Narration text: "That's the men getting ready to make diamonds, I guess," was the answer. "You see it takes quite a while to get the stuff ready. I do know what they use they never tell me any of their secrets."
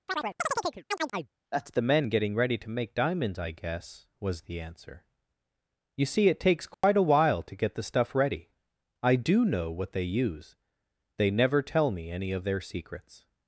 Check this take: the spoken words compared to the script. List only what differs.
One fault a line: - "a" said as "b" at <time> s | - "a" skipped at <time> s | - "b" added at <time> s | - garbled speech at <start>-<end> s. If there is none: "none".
none